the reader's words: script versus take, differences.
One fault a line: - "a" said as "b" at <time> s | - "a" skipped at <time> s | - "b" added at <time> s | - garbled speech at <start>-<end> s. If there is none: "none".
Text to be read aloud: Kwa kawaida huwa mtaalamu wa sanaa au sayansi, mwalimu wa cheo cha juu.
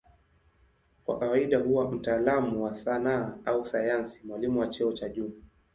none